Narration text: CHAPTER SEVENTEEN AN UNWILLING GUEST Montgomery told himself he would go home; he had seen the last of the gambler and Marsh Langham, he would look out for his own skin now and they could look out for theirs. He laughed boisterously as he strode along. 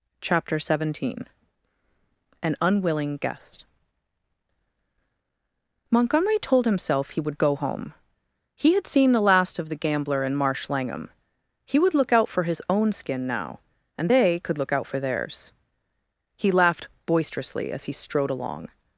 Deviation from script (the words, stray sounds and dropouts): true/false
false